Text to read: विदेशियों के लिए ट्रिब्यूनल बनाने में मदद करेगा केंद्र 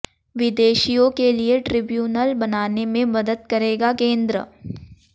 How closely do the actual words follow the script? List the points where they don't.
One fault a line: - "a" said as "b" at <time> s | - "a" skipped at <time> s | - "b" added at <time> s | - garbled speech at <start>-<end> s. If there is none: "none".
none